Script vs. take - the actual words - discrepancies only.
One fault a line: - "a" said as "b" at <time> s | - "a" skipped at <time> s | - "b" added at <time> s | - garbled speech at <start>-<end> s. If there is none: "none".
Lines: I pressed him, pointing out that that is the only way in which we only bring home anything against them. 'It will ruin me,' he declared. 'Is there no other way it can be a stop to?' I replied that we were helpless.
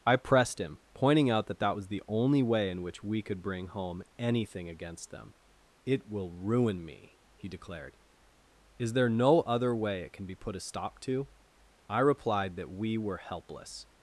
- "is" said as "was" at 1.7 s
- "only" said as "could" at 3.2 s
- "put" added at 10.4 s